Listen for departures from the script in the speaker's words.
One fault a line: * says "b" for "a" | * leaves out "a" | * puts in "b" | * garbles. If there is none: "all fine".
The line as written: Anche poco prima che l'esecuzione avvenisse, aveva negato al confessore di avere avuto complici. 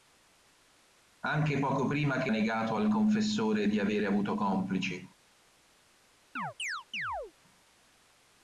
* leaves out "l'esecuzione avvenisse aveva"